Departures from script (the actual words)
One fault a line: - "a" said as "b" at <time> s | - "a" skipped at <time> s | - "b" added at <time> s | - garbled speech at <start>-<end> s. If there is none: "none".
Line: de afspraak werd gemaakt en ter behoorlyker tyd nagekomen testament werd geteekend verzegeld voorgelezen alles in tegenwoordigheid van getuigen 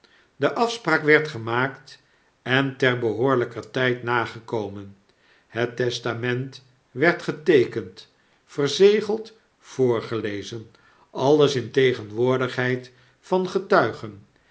- "het" added at 5.5 s